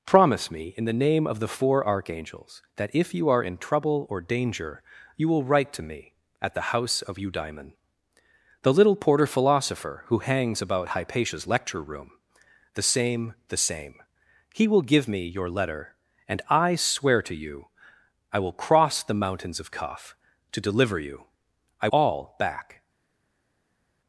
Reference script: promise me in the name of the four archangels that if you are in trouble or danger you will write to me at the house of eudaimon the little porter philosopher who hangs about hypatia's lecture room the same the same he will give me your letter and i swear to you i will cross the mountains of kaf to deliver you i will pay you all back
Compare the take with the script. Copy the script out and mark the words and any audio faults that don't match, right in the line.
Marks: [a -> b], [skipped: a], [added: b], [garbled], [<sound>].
promise me in the name of the four archangels that if you are in trouble or danger you will write to me at the house of eudaimon the little porter philosopher who hangs about hypatia's lecture room the same the same he will give me your letter and i swear to you i will cross the mountains of kaf to deliver you i [skipped: will pay you] all back